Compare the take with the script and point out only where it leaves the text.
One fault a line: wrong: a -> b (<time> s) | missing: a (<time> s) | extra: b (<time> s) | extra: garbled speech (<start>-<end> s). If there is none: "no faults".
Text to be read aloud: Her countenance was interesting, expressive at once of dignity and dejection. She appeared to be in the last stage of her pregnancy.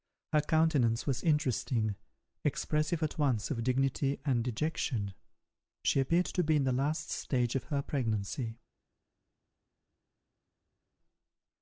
no faults